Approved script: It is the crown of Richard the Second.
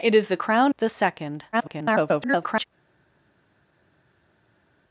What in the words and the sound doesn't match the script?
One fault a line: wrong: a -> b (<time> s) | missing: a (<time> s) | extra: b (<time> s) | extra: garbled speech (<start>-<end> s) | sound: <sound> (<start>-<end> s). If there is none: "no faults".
missing: of Richard (0.7 s)
extra: garbled speech (1.5-2.6 s)